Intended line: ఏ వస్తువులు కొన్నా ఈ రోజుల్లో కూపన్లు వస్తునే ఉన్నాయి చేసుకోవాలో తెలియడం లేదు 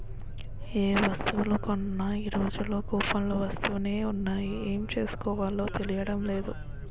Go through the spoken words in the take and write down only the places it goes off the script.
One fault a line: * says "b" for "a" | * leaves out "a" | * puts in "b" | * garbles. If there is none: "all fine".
* puts in "ఏం"